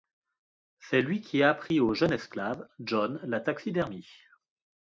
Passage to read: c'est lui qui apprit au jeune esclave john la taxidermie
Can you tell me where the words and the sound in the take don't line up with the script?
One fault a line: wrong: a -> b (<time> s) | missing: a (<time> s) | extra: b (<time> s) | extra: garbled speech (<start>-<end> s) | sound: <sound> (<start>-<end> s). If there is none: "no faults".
no faults